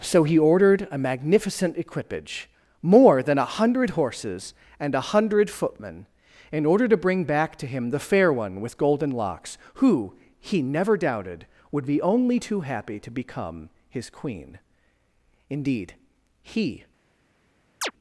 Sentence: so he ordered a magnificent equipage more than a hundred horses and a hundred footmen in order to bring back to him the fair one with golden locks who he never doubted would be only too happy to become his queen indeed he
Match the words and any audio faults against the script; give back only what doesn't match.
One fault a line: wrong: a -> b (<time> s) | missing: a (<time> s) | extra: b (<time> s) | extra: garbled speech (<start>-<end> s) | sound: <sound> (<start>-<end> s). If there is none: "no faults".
sound: chirp (17.8-17.9 s)